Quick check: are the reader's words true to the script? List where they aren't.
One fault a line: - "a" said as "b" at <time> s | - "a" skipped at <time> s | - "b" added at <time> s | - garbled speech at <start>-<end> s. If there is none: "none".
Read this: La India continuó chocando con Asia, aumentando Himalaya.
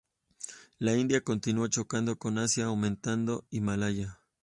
none